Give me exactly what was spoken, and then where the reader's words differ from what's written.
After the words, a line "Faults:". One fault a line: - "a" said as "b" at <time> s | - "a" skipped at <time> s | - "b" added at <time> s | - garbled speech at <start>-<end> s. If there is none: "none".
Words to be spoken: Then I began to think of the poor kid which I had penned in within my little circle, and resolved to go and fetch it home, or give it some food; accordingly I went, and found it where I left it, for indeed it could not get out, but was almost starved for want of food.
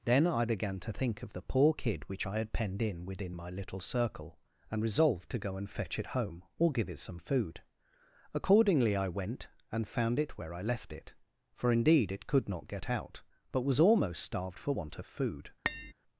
Then I began to think of the poor kid which I had penned in within my little circle, and resolved to go and fetch it home, or give it some food; accordingly I went, and found it where I left it, for indeed it could not get out, but was almost starved for want of food.
Faults:
none